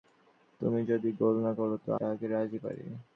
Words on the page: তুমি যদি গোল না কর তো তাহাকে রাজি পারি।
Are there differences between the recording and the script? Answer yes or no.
no